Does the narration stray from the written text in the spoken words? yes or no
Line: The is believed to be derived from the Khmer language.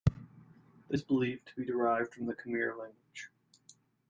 no